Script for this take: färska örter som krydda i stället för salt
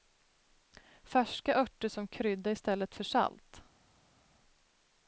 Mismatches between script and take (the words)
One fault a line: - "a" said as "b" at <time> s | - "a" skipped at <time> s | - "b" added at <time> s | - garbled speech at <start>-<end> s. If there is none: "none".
none